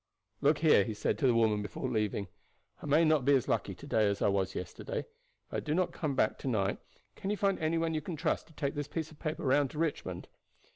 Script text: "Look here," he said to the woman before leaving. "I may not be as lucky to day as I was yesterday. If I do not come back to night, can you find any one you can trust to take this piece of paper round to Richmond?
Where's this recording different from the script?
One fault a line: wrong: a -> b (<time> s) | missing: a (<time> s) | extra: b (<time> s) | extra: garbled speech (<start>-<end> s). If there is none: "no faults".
no faults